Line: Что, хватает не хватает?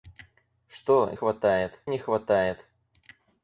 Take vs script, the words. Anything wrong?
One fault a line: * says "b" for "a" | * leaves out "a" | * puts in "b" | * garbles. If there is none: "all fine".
all fine